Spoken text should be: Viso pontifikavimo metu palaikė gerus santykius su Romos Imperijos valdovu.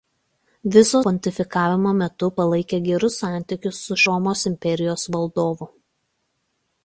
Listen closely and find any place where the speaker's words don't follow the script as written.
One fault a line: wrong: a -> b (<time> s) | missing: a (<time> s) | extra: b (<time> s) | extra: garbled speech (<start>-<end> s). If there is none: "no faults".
no faults